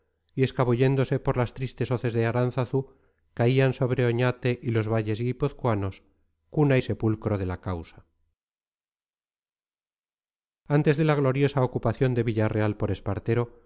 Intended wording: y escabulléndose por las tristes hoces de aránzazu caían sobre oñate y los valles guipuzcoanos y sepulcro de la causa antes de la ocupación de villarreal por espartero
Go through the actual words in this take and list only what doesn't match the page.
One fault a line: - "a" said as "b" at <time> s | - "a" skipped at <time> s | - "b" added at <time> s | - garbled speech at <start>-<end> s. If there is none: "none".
- "cuna" added at 6.5 s
- "gloriosa" added at 11.1 s